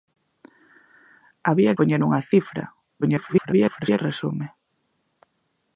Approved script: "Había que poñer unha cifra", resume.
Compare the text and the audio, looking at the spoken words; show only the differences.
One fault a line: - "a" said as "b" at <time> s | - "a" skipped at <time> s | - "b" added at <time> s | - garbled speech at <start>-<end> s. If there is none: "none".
- "que" skipped at 1.8 s
- garbled speech at 3.0-4.0 s